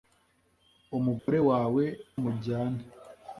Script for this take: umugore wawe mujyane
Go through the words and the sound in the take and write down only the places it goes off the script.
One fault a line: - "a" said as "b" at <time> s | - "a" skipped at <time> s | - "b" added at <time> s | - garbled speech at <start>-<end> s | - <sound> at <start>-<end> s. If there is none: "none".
- dropout at 1.2-1.3 s